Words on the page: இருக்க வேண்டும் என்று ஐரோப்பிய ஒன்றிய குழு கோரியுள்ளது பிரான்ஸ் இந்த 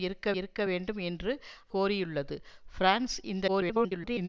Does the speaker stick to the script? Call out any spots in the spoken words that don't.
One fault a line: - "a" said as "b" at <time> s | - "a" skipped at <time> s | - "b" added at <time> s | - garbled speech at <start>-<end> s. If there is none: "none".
- "இருக்க" added at 0.3 s
- "ஐரோப்பிய ஒன்றிய குழு" skipped at 1.3 s
- garbled speech at 3.5-4.3 s